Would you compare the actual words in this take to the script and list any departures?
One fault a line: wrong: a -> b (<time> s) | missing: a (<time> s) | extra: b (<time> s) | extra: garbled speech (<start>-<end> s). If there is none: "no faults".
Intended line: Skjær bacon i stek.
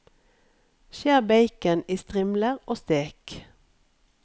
extra: strimler og (2.0 s)